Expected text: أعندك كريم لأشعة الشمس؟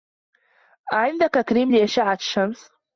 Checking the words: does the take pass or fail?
pass